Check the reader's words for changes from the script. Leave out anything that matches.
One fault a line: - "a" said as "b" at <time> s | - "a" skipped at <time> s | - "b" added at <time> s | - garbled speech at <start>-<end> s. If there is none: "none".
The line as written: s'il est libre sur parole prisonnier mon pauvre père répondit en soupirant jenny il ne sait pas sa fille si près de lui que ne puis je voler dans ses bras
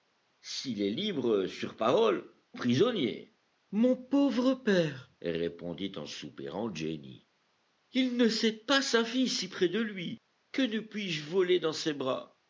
none